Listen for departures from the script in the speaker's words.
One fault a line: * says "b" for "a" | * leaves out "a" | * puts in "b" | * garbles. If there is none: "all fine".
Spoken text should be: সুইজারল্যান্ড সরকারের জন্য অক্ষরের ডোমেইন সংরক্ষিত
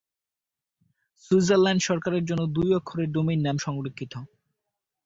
* puts in "দুই"
* puts in "নাম"